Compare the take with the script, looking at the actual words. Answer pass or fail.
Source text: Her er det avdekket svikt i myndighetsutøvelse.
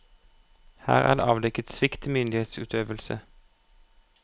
pass